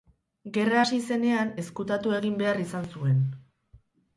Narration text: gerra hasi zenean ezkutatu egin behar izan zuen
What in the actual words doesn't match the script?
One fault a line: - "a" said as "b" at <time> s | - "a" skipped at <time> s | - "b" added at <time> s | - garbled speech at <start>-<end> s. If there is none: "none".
none